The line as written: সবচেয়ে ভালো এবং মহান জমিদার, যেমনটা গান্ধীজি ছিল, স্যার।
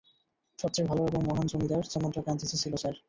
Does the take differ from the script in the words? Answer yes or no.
no